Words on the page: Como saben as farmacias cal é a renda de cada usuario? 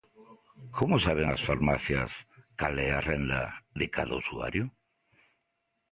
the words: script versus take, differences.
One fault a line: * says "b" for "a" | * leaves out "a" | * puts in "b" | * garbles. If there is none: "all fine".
all fine